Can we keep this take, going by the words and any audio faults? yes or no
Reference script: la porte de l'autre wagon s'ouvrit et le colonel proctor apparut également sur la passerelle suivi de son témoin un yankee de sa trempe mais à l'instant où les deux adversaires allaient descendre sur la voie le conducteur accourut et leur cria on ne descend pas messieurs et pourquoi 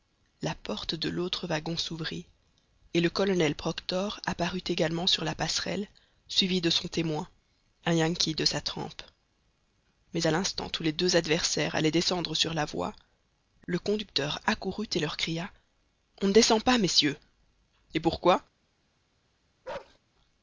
no